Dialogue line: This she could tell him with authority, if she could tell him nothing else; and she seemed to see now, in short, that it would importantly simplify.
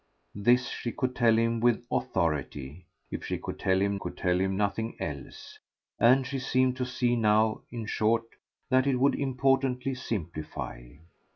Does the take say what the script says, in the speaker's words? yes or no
no